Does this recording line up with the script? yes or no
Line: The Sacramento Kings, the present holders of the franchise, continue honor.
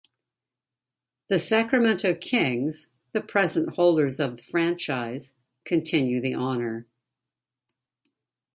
no